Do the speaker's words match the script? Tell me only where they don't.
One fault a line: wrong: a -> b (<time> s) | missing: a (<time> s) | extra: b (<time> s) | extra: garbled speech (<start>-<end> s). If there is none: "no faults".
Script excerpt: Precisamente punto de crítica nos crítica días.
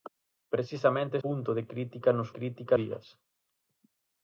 no faults